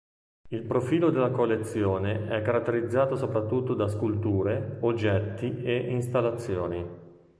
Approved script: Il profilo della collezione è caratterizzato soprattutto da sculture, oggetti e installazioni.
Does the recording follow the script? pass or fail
pass